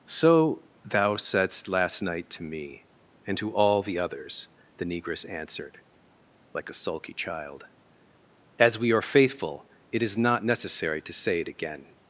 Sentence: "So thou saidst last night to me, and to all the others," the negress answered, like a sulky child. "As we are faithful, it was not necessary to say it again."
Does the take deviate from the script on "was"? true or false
true